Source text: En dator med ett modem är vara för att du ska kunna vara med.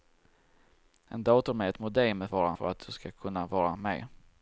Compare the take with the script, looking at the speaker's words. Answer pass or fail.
pass